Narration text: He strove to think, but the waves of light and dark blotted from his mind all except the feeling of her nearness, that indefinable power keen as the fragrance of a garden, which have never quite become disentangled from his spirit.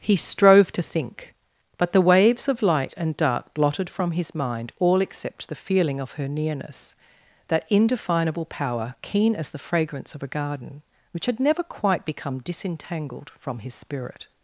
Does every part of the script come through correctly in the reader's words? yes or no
no